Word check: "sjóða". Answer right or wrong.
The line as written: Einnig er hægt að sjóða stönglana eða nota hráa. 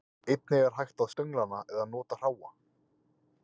wrong